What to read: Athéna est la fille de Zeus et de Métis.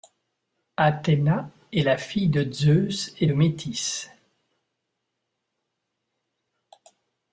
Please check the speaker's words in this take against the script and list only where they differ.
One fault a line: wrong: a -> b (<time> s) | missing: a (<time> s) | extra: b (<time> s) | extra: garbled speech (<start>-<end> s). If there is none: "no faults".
no faults